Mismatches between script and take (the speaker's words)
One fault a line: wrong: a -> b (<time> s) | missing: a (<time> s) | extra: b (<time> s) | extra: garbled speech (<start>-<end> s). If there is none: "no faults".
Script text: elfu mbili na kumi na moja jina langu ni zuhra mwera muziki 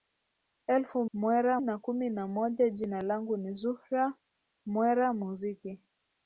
wrong: mbili -> mwera (1.1 s)